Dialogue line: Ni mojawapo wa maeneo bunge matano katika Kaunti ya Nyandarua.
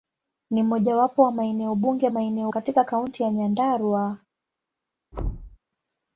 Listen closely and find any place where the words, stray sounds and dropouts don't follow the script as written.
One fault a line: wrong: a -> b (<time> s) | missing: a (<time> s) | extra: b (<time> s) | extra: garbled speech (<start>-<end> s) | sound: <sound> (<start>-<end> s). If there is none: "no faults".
wrong: matano -> maeneo (2.1 s)
sound: thud (5.1-5.6 s)